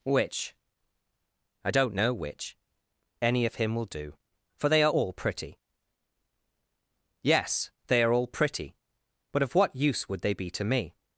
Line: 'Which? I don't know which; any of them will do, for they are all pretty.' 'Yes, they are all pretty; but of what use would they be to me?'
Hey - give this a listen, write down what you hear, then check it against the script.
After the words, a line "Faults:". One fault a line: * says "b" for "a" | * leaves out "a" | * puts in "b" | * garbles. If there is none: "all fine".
'Which? I don't know which; any of him will do, for they are all pretty.' 'Yes, they are all pretty; but of what use would they be to me?'
Faults:
* says "him" for "them"